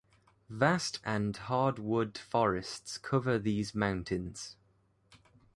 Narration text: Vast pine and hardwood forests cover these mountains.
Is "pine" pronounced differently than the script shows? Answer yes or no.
yes